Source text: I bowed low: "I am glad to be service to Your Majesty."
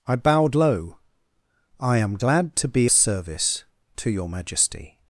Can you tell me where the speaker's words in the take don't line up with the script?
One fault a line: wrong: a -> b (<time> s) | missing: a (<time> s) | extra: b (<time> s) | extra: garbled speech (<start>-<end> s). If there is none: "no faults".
no faults